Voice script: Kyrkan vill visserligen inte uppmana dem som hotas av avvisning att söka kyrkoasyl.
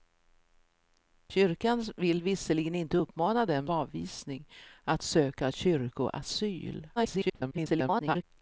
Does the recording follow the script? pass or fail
fail